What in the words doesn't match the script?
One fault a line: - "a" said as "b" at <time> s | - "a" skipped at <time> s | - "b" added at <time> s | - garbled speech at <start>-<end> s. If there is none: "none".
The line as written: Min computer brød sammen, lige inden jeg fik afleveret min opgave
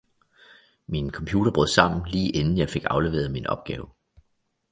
none